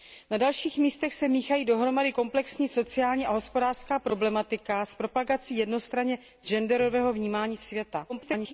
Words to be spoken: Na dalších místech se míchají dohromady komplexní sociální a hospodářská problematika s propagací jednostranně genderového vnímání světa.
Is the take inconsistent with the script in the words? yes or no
yes